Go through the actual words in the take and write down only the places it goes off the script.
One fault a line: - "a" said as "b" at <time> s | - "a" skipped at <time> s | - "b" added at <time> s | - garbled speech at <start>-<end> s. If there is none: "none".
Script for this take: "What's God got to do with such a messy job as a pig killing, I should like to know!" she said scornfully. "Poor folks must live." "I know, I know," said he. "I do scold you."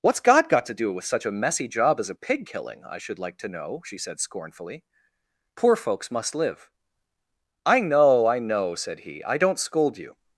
- "do" said as "don't" at 9.4 s